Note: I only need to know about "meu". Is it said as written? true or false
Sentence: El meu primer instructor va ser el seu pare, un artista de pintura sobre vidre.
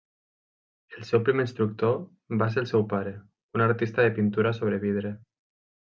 false